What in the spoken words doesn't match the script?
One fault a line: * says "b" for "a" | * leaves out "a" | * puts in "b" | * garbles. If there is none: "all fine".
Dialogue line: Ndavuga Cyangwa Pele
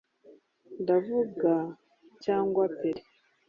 all fine